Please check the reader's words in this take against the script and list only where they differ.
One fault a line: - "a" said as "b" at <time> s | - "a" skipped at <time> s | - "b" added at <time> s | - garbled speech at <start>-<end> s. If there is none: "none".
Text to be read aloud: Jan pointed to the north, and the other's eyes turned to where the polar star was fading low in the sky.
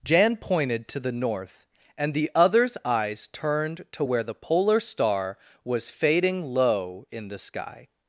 none